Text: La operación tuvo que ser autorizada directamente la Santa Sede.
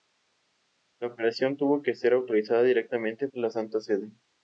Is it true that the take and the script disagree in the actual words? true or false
false